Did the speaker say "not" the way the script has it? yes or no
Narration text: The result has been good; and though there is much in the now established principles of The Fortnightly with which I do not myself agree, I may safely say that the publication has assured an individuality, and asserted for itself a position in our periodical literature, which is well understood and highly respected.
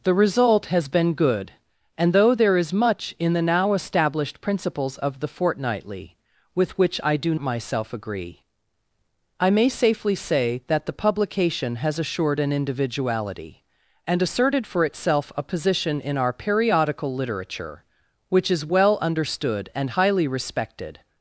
no